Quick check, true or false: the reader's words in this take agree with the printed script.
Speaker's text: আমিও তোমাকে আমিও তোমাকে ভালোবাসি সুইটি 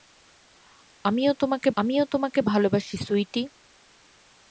true